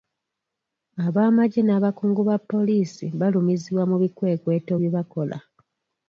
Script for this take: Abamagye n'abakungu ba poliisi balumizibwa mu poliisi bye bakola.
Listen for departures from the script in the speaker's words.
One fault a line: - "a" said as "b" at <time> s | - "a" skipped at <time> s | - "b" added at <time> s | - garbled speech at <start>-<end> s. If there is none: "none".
- "poliisi" said as "bikwekweto" at 4.0 s